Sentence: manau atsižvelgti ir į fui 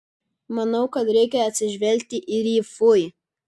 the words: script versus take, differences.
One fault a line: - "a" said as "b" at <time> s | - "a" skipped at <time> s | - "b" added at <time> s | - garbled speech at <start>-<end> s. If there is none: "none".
- "kad reikia" added at 0.9 s